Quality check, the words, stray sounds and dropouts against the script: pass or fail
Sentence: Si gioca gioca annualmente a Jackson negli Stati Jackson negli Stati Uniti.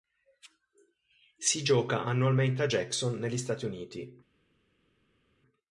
fail